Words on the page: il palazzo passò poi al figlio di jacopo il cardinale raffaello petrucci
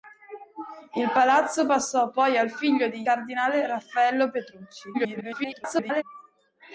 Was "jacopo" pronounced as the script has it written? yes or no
no